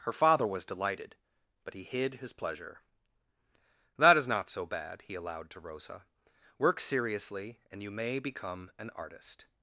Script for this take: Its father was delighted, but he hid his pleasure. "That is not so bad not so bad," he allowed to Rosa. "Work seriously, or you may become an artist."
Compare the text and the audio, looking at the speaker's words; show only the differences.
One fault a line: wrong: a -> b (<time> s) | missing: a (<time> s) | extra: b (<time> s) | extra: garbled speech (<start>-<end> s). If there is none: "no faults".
wrong: Its -> Her (0.0 s)
missing: not so bad (5.0 s)
wrong: or -> and (7.7 s)